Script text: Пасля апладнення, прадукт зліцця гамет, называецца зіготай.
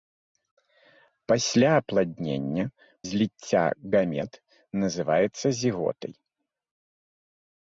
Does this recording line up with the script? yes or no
no